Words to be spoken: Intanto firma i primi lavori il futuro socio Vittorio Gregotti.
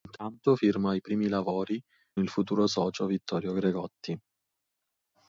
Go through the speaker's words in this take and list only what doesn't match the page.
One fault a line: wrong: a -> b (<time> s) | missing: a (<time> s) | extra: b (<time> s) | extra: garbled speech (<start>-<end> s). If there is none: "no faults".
no faults